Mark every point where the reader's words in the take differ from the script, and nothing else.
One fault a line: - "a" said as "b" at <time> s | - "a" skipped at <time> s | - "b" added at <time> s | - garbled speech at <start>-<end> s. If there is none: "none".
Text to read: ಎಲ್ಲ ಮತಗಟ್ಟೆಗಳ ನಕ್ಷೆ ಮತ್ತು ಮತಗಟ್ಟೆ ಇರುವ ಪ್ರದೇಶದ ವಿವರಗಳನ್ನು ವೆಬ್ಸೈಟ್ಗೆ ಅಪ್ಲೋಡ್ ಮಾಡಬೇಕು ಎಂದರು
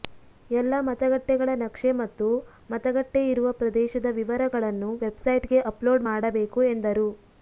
none